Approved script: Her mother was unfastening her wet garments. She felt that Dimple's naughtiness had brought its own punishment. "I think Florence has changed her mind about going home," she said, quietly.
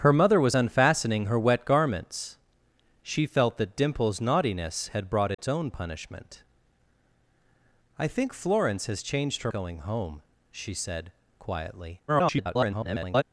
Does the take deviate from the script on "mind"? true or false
true